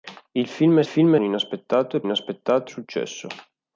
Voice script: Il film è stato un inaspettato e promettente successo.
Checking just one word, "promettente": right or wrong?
wrong